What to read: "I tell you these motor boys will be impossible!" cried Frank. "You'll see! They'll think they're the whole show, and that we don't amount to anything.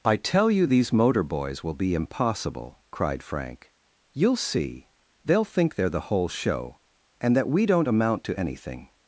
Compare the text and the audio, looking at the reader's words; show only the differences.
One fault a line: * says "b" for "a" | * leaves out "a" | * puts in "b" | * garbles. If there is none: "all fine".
all fine